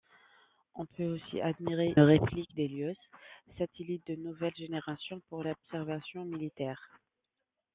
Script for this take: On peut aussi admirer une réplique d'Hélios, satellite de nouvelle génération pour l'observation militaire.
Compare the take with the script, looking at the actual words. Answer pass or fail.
fail